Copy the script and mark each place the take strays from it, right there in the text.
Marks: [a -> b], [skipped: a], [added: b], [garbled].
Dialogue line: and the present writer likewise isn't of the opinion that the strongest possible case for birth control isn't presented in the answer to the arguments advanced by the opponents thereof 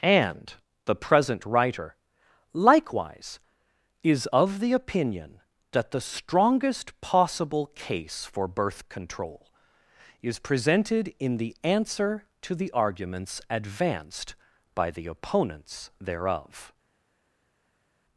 and the present writer likewise [isn't -> is] of the opinion that the strongest possible case for birth control [isn't -> is] presented in the answer to the arguments advanced by the opponents thereof